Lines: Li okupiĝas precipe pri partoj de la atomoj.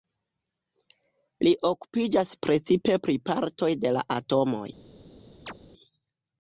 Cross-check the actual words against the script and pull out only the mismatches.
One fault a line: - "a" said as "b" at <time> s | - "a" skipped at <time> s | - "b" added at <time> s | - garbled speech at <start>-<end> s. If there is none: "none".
none